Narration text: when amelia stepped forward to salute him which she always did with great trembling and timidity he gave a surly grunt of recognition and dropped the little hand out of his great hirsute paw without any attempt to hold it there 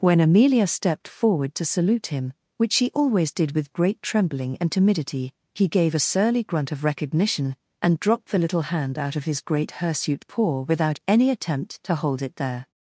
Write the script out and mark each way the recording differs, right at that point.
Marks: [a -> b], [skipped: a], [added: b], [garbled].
when amelia stepped forward to salute him which she always did with great trembling and timidity he gave a surly grunt of recognition and dropped the little hand out of his great hirsute paw without any attempt to hold it there